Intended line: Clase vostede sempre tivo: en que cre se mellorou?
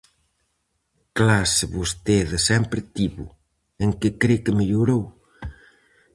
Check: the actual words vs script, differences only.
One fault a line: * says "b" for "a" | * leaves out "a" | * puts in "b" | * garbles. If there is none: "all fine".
* says "que" for "se"